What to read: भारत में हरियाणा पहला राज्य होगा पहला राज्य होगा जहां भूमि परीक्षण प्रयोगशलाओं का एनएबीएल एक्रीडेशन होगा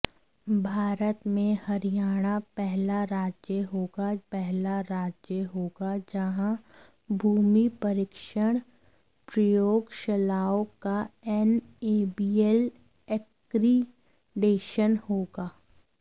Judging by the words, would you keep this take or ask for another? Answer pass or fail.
pass